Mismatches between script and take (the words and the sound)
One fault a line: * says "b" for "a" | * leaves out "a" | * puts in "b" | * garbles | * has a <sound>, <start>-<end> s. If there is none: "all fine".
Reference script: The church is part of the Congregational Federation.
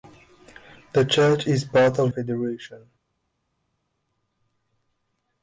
* leaves out "the Congregational"